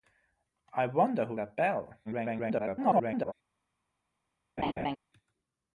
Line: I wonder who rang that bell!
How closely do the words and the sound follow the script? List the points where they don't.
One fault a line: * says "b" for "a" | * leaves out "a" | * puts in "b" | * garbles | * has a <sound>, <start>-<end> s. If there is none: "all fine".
* leaves out "rang"
* garbles
* has a laugh, 4.6-5.0 s